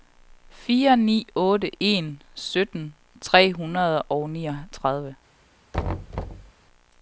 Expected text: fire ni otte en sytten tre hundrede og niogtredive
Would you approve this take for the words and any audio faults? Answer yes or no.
no